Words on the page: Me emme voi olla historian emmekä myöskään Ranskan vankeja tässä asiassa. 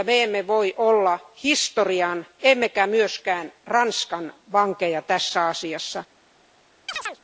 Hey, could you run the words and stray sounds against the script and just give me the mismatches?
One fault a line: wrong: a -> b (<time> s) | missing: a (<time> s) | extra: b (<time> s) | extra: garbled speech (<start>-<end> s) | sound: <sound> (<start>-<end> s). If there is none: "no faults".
sound: chirp (6.9-7.2 s)